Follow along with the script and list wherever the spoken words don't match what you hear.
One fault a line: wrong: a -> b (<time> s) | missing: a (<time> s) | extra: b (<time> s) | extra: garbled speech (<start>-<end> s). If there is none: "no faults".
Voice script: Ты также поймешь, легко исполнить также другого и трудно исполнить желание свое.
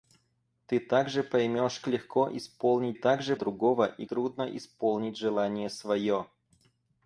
no faults